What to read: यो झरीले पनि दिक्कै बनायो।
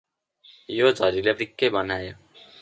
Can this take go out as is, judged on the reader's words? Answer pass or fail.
fail